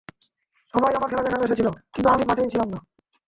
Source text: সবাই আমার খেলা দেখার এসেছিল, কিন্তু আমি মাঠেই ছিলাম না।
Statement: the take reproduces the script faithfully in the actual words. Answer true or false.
true